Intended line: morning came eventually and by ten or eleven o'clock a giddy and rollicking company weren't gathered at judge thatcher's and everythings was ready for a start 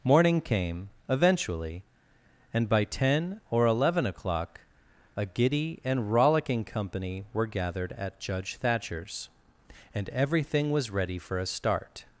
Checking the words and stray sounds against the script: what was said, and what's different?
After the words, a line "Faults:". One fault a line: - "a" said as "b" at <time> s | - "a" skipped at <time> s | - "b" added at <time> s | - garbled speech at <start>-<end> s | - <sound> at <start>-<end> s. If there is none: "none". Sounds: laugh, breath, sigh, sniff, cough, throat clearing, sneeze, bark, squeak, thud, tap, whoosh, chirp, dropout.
morning came eventually and by ten or eleven o'clock a giddy and rollicking company were gathered at judge thatcher's and everything was ready for a start
Faults:
- "weren't" said as "were" at 7.3 s
- "everythings" said as "everything" at 10.1 s